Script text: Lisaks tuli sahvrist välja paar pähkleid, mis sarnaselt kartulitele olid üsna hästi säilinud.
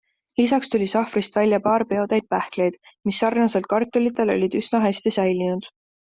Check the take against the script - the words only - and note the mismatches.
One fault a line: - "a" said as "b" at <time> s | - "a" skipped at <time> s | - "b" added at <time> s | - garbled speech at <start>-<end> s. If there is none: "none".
- "peotäit" added at 1.9 s